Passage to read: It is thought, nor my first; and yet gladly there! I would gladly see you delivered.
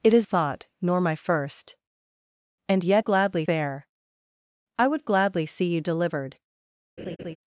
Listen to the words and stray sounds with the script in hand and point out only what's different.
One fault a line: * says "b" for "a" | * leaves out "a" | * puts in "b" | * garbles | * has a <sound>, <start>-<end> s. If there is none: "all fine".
* has a laugh, 7.0-7.4 s